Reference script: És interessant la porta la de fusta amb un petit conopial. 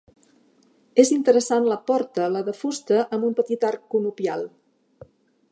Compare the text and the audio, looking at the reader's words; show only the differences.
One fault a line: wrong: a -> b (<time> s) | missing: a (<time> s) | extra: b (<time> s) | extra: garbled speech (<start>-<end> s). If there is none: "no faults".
extra: arc (3.7 s)